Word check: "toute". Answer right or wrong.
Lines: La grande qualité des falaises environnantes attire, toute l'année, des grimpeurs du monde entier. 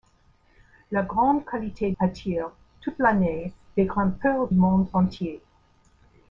right